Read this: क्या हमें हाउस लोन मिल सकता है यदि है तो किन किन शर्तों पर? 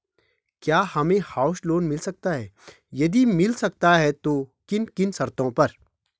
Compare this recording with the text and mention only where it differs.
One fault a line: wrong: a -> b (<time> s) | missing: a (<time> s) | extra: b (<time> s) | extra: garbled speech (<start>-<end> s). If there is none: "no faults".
extra: मिल सकता (3.3 s)